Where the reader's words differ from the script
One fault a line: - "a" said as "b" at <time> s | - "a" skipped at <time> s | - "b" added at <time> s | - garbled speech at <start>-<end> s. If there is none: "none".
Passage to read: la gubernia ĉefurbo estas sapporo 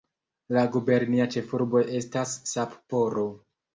none